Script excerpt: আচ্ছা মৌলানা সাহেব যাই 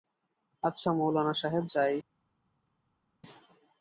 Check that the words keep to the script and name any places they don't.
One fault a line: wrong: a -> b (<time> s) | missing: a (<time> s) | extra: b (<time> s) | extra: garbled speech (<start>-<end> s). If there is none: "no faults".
no faults